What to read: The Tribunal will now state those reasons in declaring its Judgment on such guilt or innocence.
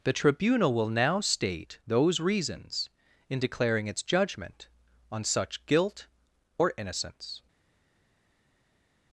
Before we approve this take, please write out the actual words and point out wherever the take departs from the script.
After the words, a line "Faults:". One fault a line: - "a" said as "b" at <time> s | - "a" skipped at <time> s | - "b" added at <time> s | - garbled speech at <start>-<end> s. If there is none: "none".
The Tribunal will now state those reasons in declaring its Judgment on such guilt or innocence.
Faults:
none